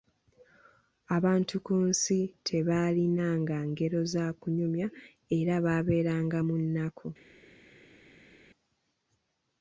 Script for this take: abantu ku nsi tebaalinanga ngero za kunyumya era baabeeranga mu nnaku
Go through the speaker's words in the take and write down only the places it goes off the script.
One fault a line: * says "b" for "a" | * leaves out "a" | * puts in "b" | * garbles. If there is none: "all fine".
all fine